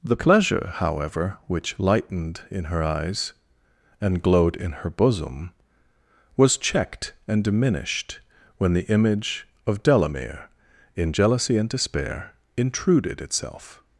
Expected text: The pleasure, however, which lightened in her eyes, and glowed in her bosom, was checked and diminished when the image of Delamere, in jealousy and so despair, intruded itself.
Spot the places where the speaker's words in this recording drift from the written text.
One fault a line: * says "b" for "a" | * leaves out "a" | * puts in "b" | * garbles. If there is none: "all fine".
* leaves out "so"